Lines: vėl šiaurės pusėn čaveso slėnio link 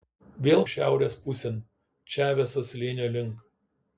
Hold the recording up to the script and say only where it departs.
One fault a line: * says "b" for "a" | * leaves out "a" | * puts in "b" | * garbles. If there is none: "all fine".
all fine